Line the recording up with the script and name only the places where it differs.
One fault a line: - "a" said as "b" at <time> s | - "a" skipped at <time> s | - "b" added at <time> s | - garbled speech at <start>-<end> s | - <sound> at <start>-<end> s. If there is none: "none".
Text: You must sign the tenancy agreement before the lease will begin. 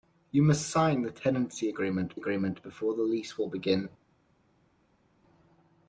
- "agreement" added at 2.1 s